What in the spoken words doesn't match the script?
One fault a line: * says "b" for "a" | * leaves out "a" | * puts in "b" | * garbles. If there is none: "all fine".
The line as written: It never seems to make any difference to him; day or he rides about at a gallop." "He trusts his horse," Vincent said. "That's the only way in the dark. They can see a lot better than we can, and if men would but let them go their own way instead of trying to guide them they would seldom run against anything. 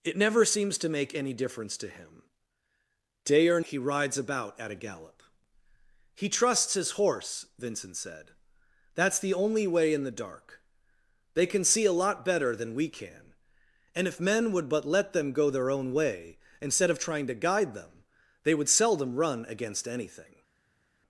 all fine